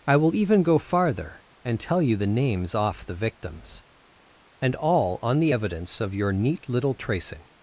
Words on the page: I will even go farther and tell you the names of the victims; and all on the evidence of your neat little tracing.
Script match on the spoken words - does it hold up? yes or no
no